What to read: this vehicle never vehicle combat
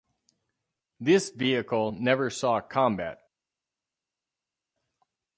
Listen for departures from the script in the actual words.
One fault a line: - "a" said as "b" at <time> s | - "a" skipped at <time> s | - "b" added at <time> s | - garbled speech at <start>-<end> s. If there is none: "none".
- "vehicle" said as "saw" at 2.3 s